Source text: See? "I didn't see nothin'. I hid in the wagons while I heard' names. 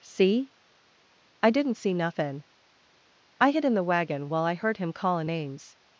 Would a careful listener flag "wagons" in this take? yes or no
yes